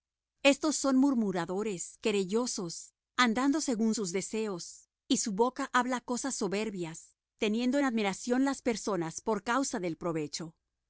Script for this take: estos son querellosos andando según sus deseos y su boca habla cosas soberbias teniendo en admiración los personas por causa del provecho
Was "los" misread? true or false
true